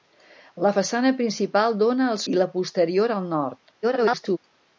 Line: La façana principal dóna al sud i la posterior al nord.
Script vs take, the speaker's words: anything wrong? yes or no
yes